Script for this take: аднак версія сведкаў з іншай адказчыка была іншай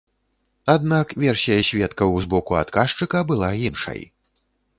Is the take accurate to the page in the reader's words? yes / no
no